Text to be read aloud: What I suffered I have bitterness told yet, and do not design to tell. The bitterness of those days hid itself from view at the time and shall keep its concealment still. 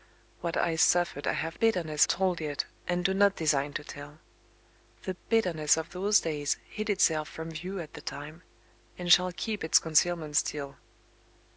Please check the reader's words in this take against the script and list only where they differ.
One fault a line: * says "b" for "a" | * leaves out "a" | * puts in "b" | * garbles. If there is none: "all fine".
all fine